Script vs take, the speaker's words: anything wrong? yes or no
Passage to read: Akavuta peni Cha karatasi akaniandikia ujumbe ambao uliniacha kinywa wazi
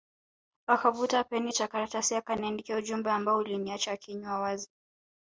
no